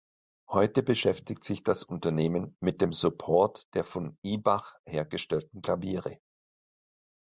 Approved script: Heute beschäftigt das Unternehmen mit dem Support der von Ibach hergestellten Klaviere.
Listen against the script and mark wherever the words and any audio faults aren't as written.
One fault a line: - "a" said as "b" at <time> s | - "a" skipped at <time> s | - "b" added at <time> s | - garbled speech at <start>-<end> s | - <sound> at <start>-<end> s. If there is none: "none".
- "sich" added at 1.4 s